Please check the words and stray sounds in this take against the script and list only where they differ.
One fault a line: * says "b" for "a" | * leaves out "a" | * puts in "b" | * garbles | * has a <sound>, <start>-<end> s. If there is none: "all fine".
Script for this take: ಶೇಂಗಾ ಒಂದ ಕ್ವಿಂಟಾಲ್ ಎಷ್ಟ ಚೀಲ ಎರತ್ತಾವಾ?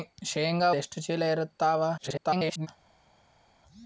* leaves out "ಒಂದ ಕ್ವಿಂಟಾಲ್"
* garbles